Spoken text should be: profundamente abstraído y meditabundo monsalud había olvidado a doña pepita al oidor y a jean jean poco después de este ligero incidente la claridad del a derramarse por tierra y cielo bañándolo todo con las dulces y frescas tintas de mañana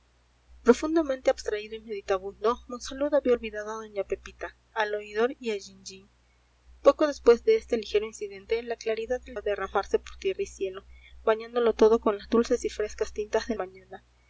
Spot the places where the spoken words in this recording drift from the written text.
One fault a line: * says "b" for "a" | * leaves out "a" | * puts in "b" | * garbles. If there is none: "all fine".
all fine